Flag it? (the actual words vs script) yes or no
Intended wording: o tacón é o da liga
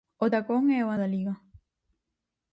no